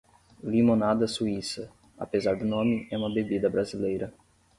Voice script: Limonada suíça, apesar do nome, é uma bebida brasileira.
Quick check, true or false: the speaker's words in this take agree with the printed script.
true